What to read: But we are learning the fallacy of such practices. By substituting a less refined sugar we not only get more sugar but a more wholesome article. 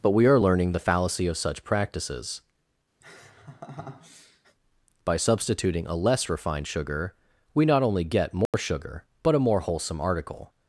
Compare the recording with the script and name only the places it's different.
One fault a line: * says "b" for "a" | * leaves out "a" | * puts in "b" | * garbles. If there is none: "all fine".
all fine